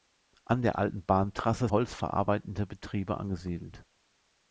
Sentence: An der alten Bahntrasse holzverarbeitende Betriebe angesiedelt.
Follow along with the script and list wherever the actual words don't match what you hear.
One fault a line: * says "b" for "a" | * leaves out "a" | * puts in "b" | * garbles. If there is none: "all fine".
all fine